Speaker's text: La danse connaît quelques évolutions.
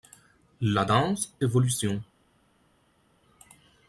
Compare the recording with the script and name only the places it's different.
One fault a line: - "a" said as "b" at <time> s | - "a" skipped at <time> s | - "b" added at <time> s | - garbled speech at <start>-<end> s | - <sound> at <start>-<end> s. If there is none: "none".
- "connaît quelques" skipped at 1.3 s